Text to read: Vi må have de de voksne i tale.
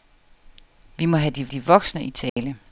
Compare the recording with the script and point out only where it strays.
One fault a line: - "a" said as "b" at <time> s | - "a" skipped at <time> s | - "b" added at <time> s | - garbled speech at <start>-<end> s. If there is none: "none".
none